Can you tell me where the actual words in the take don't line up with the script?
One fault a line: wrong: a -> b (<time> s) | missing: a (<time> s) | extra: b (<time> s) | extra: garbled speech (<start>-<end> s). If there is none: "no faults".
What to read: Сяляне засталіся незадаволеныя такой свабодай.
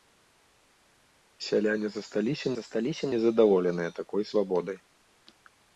extra: засталіся (2.6 s)